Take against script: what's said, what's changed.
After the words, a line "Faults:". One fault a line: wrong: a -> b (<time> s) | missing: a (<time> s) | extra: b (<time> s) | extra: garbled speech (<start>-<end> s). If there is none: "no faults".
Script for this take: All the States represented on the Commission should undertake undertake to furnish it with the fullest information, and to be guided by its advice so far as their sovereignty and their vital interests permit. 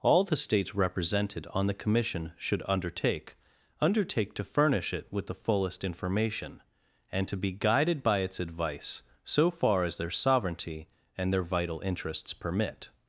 All the States represented on the Commission should undertake undertake to furnish it with the fullest information, and to be guided by its advice so far as their sovereignty and their vital interests permit.
Faults:
no faults